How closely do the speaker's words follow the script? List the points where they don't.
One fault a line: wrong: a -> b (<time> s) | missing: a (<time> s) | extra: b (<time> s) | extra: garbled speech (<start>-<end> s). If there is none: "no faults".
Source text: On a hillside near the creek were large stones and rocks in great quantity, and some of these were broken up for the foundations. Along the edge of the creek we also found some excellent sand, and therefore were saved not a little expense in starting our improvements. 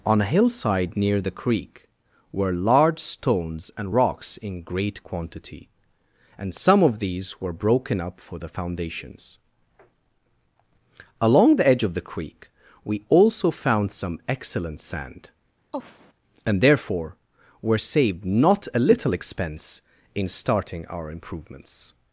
no faults